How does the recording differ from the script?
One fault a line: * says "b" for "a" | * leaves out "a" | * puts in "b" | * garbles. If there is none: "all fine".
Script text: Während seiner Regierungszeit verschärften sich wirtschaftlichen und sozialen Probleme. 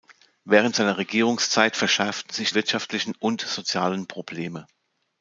all fine